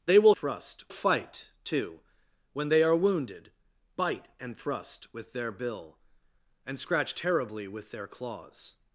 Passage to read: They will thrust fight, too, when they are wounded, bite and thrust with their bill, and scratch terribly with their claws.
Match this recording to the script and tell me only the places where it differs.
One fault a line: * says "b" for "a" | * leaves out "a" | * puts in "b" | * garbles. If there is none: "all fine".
all fine